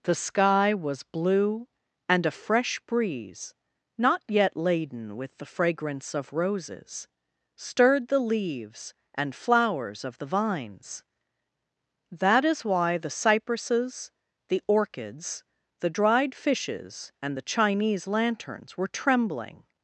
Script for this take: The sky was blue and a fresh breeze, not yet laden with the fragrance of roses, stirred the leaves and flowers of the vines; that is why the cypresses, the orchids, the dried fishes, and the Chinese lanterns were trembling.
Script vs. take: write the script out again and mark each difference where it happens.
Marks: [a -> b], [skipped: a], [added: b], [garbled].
The sky was blue and a fresh breeze, not yet laden with the fragrance of roses, stirred the leaves and flowers of the vines; that is why the cypresses, the orchids, the dried fishes, and the Chinese lanterns were trembling.